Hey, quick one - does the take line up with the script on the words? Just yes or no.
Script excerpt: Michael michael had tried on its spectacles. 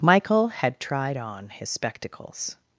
no